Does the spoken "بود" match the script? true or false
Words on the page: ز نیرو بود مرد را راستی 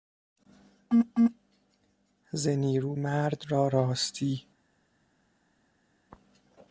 false